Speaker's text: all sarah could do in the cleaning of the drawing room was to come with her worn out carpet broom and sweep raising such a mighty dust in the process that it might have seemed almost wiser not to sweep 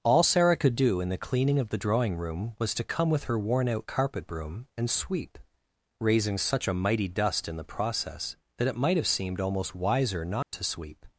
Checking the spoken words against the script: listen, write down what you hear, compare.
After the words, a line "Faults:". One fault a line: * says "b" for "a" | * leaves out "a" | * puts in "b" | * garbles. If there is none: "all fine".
all sarah could do in the cleaning of the drawing room was to come with her worn out carpet broom and sweep raising such a mighty dust in the process that it might have seemed almost wiser not to sweep
Faults:
all fine